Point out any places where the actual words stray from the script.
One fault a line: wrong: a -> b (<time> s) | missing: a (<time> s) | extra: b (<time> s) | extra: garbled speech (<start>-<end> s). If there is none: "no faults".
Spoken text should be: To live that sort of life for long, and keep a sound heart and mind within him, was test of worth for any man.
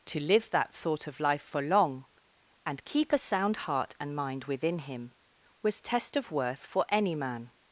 no faults